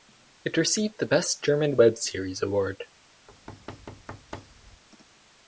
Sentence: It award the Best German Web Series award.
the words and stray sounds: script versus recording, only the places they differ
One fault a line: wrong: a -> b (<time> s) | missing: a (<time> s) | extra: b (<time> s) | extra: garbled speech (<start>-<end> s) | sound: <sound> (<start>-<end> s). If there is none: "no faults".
wrong: award -> received (0.6 s)
sound: thud (3.3-4.8 s)